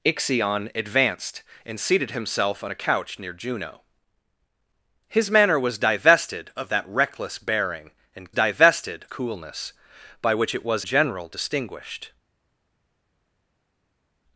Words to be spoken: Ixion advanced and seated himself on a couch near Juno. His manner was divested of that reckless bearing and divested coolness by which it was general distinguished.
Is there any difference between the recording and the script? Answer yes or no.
no